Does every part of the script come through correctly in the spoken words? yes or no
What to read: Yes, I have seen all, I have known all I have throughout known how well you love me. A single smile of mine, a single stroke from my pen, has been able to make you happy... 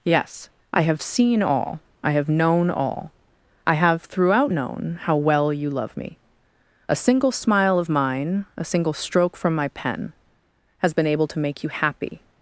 yes